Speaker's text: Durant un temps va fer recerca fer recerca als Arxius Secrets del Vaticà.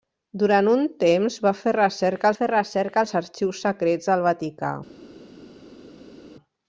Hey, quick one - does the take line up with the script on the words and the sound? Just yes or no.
yes